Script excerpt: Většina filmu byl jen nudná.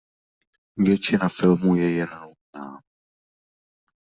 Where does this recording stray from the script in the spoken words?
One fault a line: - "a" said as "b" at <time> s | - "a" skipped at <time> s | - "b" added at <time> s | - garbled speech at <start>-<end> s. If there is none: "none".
- "byl" said as "je" at 1.8 s